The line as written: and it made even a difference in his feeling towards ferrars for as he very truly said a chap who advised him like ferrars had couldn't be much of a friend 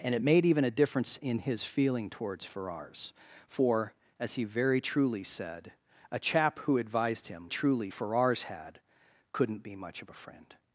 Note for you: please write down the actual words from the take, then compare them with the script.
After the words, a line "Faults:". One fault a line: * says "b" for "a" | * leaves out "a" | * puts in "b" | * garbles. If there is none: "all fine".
and it made even a difference in his feeling towards ferrars for as he very truly said a chap who advised him truly ferrars had couldn't be much of a friend
Faults:
* says "truly" for "like"